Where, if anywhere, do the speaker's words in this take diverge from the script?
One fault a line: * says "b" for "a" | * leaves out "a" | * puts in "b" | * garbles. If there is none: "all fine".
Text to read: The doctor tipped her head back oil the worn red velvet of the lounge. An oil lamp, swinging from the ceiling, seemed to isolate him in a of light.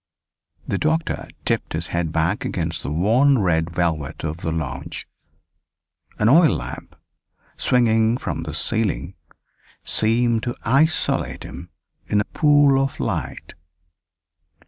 * says "his" for "her"
* says "against" for "oil"
* puts in "pool"